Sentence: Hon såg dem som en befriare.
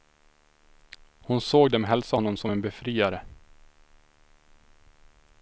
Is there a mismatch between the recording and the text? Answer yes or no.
yes